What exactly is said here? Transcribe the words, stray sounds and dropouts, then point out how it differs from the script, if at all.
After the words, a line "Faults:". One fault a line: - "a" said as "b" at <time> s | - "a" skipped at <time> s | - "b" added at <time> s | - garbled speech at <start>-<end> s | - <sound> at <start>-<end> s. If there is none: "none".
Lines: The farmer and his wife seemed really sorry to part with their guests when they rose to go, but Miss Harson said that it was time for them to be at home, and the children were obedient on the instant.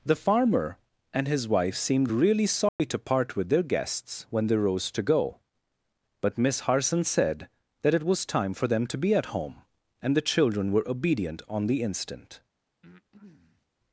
The farmer and his wife seemed really sorry to part with their guests when they rose to go, but Miss Harson said that it was time for them to be at home, and the children were obedient on the instant.
Faults:
- dropout at 2.7-2.8 s
- breath at 12.8-13.7 s